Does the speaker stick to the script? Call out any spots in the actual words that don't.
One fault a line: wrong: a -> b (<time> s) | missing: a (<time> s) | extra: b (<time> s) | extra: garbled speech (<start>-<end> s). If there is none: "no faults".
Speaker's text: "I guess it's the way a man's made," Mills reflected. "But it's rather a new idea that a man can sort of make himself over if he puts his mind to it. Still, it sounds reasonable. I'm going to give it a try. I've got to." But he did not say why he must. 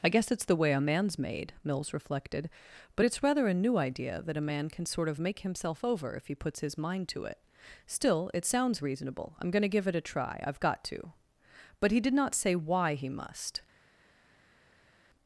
no faults